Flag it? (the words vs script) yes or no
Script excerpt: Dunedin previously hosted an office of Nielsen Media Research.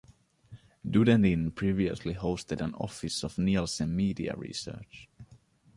no